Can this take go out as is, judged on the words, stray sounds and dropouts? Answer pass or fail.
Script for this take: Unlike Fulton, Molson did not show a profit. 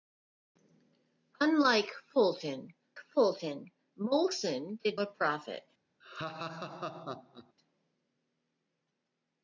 fail